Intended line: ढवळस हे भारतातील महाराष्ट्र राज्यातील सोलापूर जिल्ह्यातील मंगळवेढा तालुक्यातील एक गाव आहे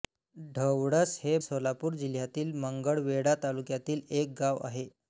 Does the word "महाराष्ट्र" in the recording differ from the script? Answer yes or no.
yes